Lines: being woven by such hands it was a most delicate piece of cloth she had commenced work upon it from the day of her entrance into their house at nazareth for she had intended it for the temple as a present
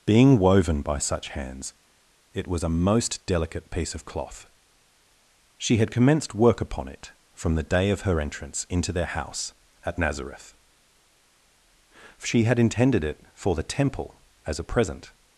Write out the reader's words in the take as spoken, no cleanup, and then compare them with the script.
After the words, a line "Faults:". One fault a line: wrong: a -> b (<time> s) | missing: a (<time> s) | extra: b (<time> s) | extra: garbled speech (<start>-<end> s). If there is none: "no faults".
being woven by such hands it was a most delicate piece of cloth she had commenced work upon it from the day of her entrance into their house at nazareth she had intended it for the temple as a present
Faults:
missing: for (10.5 s)